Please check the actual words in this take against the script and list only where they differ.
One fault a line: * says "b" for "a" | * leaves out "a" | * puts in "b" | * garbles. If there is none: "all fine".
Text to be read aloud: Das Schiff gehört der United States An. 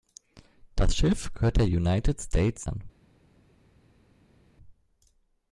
all fine